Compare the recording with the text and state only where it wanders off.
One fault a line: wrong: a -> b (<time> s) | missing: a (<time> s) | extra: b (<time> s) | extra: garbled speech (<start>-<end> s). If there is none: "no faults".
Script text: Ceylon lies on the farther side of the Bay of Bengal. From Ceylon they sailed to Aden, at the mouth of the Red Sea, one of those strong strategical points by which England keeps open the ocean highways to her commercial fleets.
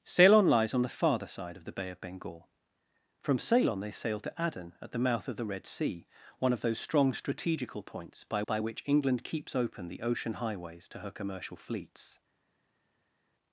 extra: by (8.4 s)